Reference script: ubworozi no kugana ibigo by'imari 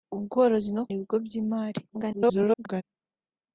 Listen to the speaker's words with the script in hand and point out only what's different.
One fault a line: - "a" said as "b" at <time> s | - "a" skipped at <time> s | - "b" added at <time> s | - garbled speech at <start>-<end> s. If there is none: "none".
- "kugana" skipped at 0.8 s
- garbled speech at 1.9-2.8 s